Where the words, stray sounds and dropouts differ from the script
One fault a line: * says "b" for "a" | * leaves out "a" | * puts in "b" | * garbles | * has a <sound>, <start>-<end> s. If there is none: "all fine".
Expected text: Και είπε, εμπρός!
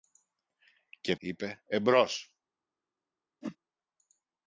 * has a whoosh, 3.4-3.6 s